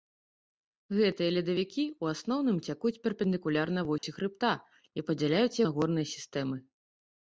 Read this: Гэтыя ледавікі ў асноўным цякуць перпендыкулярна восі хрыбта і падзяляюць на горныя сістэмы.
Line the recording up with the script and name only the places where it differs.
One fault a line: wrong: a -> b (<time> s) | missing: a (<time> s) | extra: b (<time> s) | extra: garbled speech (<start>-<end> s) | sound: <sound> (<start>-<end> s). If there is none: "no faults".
sound: dropout (4.0-4.0 s)